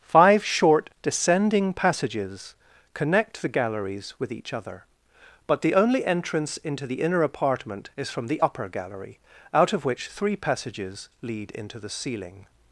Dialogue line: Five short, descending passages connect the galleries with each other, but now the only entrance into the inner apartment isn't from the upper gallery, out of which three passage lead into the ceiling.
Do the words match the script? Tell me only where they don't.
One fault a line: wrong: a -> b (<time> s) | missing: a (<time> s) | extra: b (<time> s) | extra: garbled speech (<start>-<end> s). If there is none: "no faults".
missing: now (5.6 s)
wrong: isn't -> is (8.0 s)
wrong: passage -> passages (10.4 s)